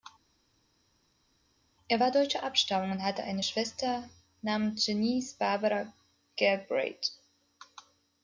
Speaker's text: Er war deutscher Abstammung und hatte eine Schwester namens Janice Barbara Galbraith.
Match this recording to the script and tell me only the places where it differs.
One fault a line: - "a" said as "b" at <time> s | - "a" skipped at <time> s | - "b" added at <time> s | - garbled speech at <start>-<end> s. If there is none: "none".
none